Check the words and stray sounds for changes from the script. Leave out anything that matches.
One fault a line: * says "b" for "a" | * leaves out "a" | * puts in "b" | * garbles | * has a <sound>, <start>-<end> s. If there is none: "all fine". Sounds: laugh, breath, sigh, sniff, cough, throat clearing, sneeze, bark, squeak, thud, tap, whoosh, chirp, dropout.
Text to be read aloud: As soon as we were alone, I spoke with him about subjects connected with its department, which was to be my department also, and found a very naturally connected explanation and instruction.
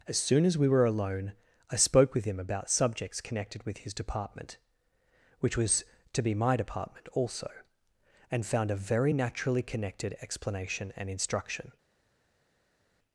* says "his" for "its"